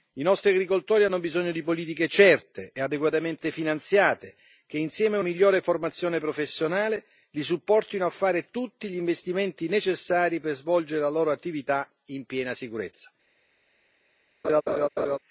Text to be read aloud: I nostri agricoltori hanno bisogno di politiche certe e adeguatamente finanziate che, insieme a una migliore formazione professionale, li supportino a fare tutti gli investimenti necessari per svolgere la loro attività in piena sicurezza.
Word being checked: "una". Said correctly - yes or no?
no